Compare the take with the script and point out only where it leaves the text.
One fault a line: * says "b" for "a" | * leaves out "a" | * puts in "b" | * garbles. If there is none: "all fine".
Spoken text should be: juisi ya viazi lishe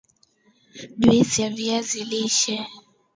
all fine